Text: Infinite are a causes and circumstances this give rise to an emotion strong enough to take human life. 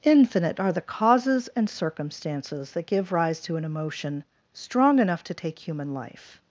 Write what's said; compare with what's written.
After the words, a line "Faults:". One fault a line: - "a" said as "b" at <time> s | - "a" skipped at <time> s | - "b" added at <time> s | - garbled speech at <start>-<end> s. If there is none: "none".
Infinite are the causes and circumstances that give rise to an emotion strong enough to take human life.
Faults:
- "a" said as "the" at 0.7 s
- "this" said as "that" at 2.7 s